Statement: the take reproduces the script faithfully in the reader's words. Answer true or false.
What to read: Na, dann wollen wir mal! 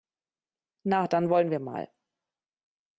true